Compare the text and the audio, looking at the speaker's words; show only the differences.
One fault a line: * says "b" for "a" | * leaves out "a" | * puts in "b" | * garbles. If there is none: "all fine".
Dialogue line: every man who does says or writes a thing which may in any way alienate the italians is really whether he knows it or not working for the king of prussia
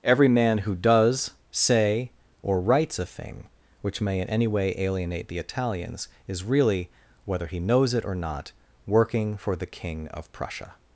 * says "say" for "says"